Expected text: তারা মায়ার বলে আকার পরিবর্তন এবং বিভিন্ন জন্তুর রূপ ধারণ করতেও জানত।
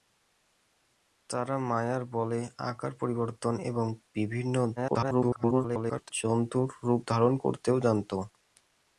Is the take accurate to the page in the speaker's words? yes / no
no